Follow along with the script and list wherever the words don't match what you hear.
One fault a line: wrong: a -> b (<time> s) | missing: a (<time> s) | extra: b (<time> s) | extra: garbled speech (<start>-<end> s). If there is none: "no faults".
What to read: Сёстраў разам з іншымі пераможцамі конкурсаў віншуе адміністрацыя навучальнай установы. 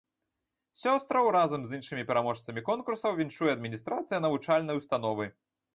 no faults